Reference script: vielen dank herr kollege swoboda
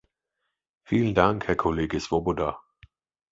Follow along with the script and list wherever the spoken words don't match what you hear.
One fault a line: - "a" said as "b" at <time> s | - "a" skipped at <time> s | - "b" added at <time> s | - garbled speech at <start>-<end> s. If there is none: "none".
none